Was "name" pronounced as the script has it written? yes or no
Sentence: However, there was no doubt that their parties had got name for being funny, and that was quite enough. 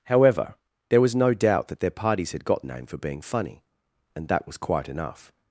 yes